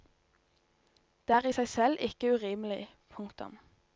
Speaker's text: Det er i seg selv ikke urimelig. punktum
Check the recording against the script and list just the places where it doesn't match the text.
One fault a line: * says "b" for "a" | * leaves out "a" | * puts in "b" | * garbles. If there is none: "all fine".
all fine